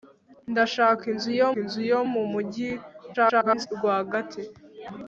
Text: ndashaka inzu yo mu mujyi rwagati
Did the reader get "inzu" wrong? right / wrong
right